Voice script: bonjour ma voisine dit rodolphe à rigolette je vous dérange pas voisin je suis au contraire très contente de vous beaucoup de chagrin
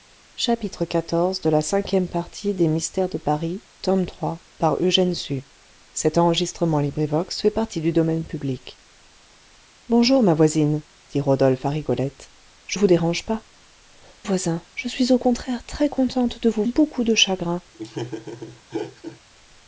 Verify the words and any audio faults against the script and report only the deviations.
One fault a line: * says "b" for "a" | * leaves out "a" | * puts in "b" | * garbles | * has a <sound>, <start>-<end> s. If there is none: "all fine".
* has a laugh, 17.7-19.2 s